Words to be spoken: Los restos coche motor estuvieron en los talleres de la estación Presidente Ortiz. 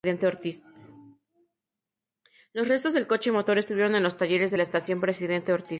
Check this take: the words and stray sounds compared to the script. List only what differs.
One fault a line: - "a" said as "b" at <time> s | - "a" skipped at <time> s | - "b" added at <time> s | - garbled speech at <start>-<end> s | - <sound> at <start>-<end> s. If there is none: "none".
- "del" added at 2.9 s